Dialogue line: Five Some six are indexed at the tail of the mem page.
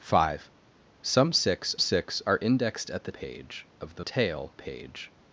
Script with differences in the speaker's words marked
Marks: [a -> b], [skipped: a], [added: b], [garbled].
Five Some six [added: six] are indexed at the [tail -> page] of the [mem -> tail] page.